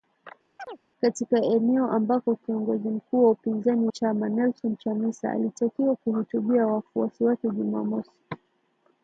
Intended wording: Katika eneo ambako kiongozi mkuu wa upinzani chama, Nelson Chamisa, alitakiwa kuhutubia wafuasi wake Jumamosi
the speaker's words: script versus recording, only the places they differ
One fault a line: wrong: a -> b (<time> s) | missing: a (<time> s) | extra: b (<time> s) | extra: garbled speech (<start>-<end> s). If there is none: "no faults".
no faults